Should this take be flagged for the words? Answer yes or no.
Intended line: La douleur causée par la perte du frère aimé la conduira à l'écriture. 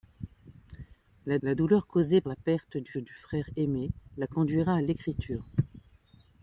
yes